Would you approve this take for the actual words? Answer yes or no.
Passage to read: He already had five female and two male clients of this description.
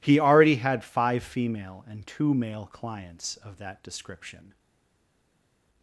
no